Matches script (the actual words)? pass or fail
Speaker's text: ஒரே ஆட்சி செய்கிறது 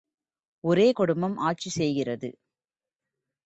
fail